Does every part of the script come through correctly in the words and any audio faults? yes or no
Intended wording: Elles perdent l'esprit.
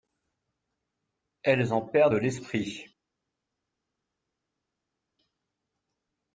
no